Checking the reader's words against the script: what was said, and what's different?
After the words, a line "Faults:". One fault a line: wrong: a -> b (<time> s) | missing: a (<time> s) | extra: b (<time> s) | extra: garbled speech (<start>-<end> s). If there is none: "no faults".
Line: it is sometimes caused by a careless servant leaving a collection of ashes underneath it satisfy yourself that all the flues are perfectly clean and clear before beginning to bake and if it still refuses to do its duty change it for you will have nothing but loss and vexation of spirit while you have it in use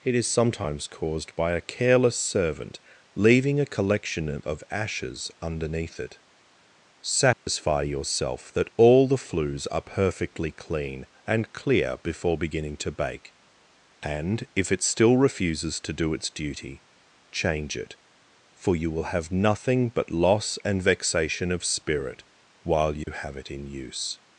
it is sometimes caused by a careless servant leaving a collection of ashes underneath it satisfy yourself that all the flues are perfectly clean and clear before beginning to bake and if it still refuses to do its duty change it for you will have nothing but loss and vexation of spirit while you have it in use
Faults:
no faults